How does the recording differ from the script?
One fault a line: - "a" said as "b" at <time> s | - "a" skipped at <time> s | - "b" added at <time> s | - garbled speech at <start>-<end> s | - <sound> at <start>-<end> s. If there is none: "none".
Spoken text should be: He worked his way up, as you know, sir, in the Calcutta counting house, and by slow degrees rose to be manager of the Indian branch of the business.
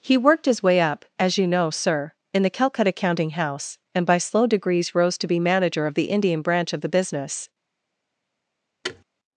- thud at 8.8-9.0 s